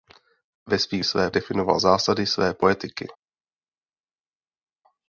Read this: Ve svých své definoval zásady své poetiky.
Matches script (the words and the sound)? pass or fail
pass